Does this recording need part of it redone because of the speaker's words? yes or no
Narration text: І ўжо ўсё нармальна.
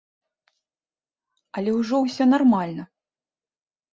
yes